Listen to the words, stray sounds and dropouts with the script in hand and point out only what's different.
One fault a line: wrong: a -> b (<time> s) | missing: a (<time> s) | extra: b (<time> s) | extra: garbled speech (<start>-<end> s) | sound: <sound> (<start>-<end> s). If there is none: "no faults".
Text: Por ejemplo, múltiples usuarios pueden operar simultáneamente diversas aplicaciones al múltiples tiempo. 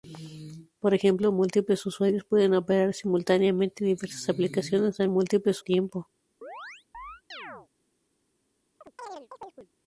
sound: chirp (6.4-7.7 s)
sound: chirp (8.8-9.7 s)